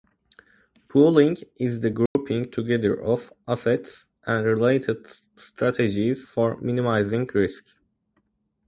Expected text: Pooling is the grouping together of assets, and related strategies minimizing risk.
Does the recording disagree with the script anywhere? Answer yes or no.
yes